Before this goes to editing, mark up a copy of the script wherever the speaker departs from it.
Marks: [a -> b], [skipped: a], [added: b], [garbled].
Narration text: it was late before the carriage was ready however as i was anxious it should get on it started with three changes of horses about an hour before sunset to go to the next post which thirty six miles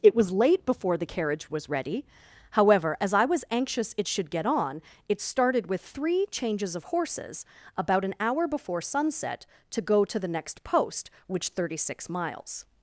it was late before the carriage was ready however as i was anxious it should get on it started with three changes of horses about an hour before sunset to go to the next post which thirty six miles